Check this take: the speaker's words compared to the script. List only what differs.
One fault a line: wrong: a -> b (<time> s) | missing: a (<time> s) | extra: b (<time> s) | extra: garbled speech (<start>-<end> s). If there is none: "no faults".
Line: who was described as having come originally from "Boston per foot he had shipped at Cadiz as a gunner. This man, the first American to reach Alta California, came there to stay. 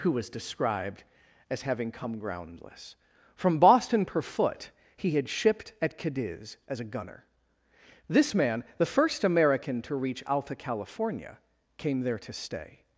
wrong: originally -> groundless (2.2 s)